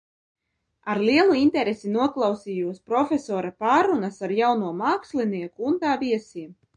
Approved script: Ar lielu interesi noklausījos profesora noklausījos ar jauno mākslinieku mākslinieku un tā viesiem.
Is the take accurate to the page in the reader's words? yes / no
no